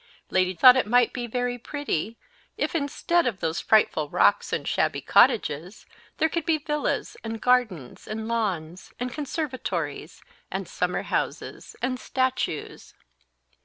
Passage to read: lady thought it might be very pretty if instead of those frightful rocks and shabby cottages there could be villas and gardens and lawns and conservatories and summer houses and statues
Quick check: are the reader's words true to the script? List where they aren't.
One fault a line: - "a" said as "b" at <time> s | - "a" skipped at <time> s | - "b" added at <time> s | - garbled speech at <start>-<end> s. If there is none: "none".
none